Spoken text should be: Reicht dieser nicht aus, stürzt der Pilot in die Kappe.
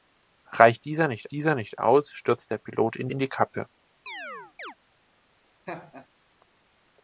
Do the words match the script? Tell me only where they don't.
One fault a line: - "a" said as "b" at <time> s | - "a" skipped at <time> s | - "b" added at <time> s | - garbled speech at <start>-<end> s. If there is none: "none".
- "dieser nicht" added at 1.3 s
- "in" added at 3.1 s